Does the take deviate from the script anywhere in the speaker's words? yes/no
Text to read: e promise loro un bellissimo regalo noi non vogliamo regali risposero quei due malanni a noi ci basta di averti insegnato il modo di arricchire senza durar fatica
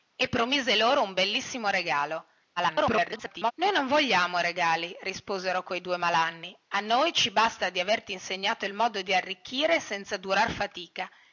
yes